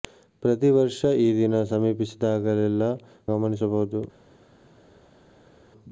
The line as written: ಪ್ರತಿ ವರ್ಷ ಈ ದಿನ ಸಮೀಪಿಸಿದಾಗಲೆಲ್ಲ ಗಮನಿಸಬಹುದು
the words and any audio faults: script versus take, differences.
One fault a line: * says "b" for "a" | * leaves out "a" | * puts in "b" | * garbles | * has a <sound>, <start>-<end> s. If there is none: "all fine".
all fine